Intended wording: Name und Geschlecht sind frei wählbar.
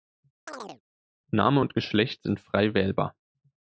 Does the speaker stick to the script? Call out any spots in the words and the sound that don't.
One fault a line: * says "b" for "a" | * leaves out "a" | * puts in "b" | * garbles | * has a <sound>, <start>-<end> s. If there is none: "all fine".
* has a chirp, 0.5-0.8 s